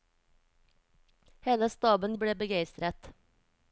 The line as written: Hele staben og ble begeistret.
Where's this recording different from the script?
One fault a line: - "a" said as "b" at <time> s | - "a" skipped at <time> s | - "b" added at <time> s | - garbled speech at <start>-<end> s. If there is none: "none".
none